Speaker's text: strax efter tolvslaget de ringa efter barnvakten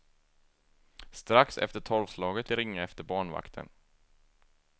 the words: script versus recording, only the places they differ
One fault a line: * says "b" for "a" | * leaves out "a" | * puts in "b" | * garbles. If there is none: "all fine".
all fine